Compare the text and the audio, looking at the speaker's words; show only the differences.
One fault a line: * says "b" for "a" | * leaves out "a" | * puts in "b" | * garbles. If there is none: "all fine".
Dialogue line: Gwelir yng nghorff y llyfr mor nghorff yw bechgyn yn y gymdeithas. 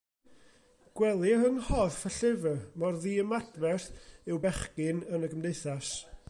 * says "ddiymadferth" for "nghorff"